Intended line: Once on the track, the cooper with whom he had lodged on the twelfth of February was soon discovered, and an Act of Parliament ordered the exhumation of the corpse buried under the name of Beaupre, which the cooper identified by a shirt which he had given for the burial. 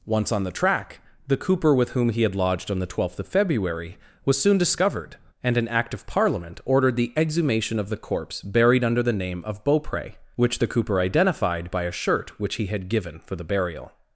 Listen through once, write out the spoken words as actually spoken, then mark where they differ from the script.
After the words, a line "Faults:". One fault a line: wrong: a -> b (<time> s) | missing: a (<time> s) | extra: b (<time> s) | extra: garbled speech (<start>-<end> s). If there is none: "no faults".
Once on the track, the cooper with whom he had lodged on the twelfth of February was soon discovered, and an Act of Parliament ordered the exhumation of the corpse buried under the name of Beaupre, which the cooper identified by a shirt which he had given for the burial.
Faults:
no faults